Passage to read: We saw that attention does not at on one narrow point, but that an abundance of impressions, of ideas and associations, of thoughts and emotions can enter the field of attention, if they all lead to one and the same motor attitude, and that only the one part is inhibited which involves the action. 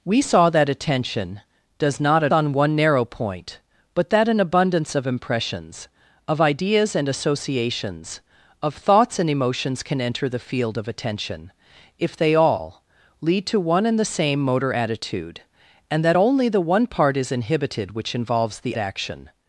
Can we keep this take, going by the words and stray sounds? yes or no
yes